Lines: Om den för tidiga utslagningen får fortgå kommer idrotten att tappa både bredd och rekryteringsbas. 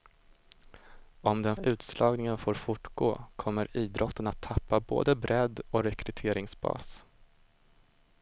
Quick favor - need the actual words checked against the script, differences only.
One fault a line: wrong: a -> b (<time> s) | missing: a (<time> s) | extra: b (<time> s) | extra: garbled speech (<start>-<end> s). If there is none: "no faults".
missing: för tidiga (1.6 s)